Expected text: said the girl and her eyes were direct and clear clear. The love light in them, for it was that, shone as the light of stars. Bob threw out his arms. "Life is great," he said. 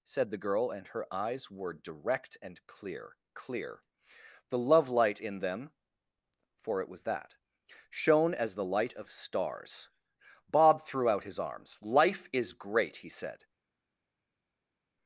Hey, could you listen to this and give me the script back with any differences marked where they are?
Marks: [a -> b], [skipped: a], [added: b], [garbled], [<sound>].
said the girl and her eyes were direct and clear clear. The love light in them, for it was that, shone as the light of stars. Bob threw out his arms. "Life is great," he said.